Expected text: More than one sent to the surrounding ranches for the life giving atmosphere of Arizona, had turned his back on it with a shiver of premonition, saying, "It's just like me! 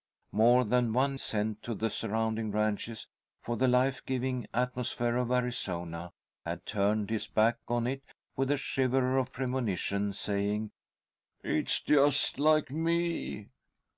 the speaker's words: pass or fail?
pass